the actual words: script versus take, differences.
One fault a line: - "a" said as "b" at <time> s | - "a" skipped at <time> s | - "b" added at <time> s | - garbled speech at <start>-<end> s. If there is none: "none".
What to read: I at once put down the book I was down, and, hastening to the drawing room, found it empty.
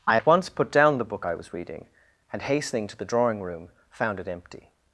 - "down" said as "reading" at 1.5 s